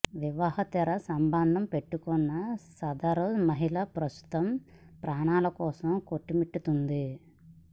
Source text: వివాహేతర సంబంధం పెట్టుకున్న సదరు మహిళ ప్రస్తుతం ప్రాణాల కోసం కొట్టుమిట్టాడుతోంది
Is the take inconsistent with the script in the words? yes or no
no